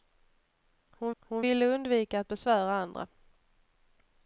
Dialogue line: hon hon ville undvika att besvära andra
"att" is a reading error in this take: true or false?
false